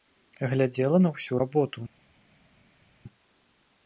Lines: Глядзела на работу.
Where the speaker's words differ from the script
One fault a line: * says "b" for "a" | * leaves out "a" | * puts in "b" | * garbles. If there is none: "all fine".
* puts in "ўсю"